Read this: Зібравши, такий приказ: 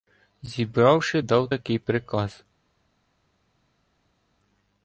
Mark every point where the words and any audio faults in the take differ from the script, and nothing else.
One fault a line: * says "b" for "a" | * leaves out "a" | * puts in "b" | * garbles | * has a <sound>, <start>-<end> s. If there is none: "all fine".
* puts in "дав"